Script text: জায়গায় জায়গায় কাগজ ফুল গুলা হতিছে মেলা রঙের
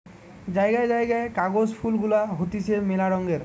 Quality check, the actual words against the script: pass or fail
pass